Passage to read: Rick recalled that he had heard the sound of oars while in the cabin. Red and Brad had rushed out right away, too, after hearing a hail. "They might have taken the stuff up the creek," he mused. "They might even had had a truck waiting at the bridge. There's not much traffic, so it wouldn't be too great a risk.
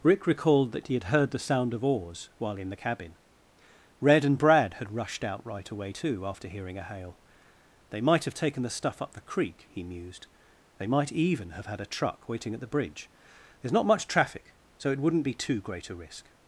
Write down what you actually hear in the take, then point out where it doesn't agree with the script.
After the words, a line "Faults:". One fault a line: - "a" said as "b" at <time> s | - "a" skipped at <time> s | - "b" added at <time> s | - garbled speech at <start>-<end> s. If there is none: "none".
Rick recalled that he had heard the sound of oars while in the cabin. Red and Brad had rushed out right away, too, after hearing a hail. "They might have taken the stuff up the creek," he mused. "They might even have had a truck waiting at the bridge. There's not much traffic, so it wouldn't be too great a risk.
Faults:
- "had" said as "have" at 11.5 s